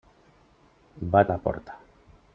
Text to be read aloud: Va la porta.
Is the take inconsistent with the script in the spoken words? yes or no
no